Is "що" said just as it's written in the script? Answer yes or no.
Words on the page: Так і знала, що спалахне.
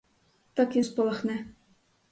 no